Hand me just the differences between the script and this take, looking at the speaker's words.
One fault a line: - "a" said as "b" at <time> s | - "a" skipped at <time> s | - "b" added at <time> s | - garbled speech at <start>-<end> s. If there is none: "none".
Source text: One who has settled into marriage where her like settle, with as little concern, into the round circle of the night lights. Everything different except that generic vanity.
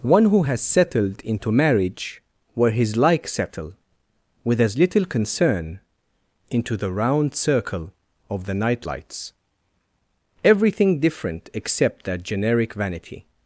- "her" said as "his" at 2.7 s